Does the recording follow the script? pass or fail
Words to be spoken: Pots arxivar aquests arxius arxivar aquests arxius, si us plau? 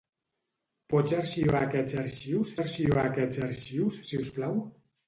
pass